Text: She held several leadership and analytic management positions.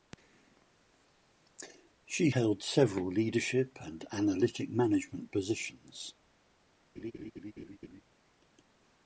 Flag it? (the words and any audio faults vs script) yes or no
yes